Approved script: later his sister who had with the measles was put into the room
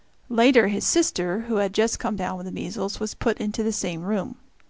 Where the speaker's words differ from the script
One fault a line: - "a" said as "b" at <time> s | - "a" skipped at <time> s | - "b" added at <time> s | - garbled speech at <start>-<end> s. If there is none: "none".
- "just come down" added at 1.8 s
- "same" added at 3.7 s